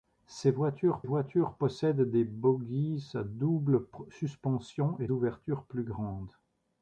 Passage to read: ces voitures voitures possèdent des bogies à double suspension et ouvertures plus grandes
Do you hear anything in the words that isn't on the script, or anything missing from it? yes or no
no